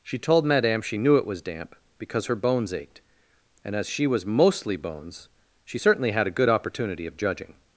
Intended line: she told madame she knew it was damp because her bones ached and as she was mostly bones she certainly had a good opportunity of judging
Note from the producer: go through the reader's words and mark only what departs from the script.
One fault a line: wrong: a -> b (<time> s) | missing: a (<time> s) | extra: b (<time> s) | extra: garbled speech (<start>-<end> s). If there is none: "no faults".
no faults